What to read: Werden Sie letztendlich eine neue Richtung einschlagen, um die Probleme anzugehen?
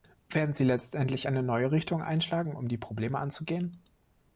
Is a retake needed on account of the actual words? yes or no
no